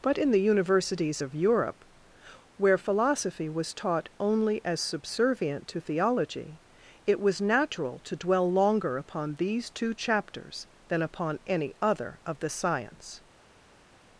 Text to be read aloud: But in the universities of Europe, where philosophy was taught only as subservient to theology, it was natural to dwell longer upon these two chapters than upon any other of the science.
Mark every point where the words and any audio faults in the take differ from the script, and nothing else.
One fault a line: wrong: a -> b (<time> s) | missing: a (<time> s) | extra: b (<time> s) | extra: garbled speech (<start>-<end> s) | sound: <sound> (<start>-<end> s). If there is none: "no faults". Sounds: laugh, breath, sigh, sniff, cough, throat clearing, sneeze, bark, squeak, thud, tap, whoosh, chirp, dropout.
no faults